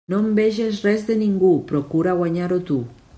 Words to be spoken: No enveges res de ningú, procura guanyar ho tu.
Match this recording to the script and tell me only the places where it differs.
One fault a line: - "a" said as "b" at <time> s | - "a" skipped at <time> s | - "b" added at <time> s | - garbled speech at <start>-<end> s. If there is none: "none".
none